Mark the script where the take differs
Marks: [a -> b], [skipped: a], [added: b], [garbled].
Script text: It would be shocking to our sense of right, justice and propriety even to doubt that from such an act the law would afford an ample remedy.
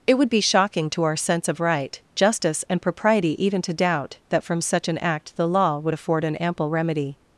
It would be shocking to our sense of right, justice and propriety even to doubt that from such an act the law would afford an ample remedy.